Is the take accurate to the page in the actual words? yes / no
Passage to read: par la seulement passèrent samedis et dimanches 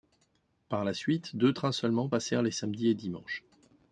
no